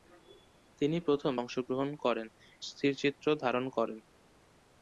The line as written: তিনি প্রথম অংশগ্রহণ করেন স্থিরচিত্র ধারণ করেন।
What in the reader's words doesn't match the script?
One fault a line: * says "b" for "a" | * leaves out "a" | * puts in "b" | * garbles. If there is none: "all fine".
all fine